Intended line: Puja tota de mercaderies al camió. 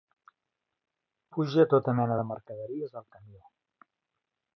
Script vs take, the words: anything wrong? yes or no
yes